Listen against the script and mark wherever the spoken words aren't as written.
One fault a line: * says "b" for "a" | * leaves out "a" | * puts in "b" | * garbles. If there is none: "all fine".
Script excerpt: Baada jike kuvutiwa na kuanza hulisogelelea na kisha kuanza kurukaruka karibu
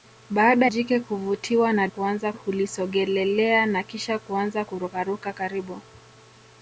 all fine